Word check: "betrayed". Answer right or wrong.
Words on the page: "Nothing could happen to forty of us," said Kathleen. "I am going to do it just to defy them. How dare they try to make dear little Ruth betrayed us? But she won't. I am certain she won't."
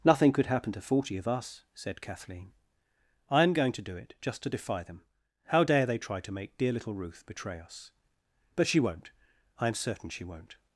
wrong